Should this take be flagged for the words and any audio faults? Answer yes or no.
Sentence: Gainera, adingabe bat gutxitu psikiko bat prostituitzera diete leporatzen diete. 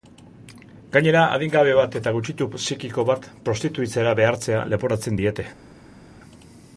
yes